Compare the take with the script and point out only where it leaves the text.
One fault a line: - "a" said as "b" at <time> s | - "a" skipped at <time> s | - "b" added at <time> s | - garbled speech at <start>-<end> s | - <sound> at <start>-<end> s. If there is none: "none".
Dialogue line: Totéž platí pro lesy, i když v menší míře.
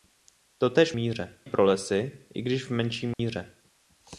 - "platí" said as "míře" at 0.9 s
- dropout at 3.1-3.2 s